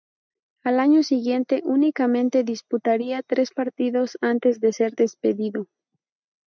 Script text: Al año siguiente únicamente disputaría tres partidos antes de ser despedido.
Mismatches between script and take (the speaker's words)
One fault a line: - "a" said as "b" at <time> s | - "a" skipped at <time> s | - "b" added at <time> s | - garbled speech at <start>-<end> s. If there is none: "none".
none